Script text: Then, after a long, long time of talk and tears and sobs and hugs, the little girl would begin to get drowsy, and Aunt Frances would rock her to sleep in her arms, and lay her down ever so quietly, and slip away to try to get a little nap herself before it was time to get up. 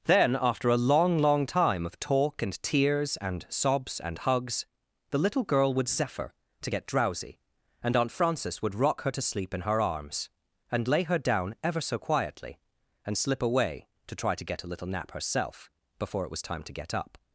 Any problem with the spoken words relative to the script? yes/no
yes